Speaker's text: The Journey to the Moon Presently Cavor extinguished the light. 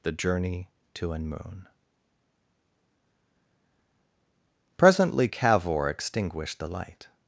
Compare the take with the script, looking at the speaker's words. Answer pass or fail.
fail